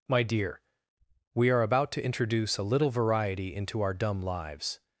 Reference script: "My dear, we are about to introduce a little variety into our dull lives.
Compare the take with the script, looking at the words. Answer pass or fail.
fail